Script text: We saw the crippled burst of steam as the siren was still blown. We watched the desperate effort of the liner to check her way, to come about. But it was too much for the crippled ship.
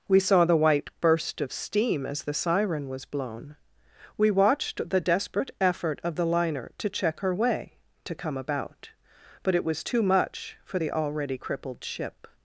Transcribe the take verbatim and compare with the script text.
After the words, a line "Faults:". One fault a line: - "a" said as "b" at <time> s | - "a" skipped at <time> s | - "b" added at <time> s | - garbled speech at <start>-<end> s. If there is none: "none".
We saw the white burst of steam as the siren was blown. We watched the desperate effort of the liner to check her way, to come about. But it was too much for the already crippled ship.
Faults:
- "crippled" said as "white" at 0.6 s
- "still" skipped at 3.0 s
- "already" added at 10.9 s